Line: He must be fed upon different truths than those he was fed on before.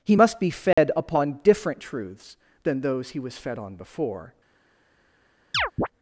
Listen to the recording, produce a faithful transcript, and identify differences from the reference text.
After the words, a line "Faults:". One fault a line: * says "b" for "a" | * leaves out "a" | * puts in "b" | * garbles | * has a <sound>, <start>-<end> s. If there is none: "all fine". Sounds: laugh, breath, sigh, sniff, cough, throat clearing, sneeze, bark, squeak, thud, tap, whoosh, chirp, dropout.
He must be fed upon different truths than those he was fed on before.
Faults:
* has a dropout, 0.7-0.8 s
* has a chirp, 5.5-5.9 s